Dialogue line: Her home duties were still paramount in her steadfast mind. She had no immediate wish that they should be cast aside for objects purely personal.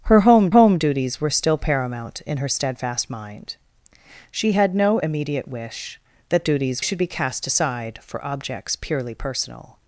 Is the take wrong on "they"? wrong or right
wrong